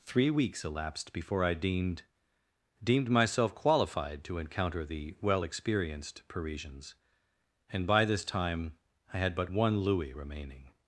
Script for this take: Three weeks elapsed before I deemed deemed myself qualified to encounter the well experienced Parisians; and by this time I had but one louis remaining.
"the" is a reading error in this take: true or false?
false